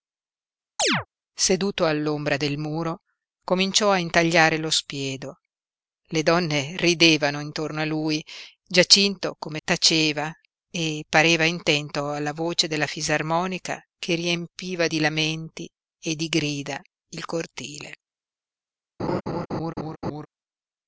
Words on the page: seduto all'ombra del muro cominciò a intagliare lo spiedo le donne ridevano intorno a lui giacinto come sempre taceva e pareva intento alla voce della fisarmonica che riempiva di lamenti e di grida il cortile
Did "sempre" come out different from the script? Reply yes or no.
yes